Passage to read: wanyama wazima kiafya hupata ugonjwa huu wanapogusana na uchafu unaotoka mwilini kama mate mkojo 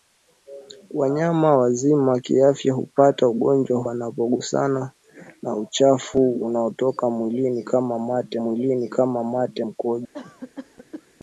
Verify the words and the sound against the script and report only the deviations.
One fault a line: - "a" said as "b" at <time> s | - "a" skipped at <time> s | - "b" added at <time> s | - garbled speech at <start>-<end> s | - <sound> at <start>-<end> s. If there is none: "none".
- "huu" skipped at 3.8 s
- "mwilini kama mate" added at 8.4 s
- cough at 10.1-11.1 s